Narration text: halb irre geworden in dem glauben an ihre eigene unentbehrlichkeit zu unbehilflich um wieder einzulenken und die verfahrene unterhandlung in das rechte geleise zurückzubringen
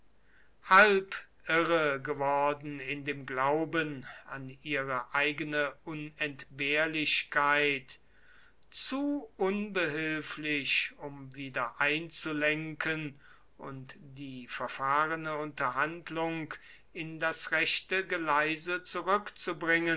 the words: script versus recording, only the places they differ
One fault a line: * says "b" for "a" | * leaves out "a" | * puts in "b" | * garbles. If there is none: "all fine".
all fine